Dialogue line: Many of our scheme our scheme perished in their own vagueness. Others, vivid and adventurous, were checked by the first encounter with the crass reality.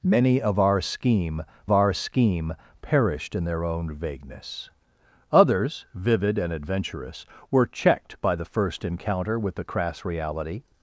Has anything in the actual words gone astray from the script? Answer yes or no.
no